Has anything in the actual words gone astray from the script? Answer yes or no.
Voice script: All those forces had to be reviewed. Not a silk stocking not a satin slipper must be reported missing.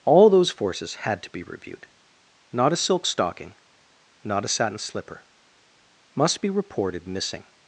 no